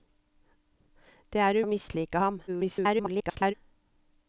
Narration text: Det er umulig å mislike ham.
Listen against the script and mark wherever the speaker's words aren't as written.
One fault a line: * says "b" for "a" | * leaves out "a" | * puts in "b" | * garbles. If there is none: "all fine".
* leaves out "umulig"
* garbles